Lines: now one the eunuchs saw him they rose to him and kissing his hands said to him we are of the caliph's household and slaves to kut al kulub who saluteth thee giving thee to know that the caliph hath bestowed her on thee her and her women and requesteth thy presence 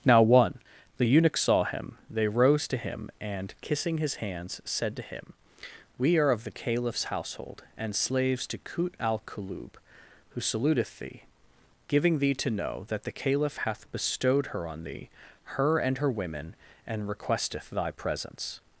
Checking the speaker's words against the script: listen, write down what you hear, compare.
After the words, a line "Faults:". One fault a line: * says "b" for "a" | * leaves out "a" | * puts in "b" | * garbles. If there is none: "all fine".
now one the eunuchs saw him they rose to him and kissing his hands said to him we are of the caliph's household and slaves to kut al kulub who saluteth thee giving thee to know that the caliph hath bestowed her on thee her and her women and requesteth thy presence
Faults:
all fine